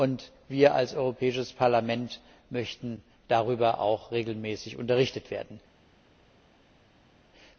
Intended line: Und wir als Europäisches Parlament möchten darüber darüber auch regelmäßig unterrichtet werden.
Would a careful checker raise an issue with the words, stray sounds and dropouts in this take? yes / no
yes